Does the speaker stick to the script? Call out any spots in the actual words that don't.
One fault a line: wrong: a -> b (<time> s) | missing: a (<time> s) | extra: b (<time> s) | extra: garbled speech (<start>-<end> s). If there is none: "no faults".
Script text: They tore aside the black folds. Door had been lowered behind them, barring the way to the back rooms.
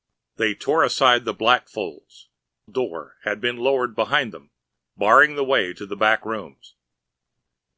no faults